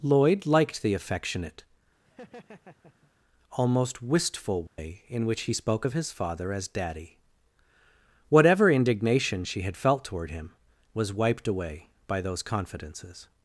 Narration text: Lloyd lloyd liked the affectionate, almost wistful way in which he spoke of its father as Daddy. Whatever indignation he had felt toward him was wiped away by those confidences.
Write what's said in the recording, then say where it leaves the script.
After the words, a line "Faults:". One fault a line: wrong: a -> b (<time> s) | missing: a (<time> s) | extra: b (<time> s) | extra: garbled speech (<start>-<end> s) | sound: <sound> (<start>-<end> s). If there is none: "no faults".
Lloyd liked the affectionate, almost wistful way in which he spoke of his father as Daddy. Whatever indignation she had felt toward him was wiped away by those confidences.
Faults:
missing: lloyd (0.5 s)
sound: laugh (2.0-3.1 s)
sound: dropout (4.7-4.8 s)
wrong: its -> his (5.9 s)
wrong: he -> she (9.4 s)